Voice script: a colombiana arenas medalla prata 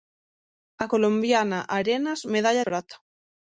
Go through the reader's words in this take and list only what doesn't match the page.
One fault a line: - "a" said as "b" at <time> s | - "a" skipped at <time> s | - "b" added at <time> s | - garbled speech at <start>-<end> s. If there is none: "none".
none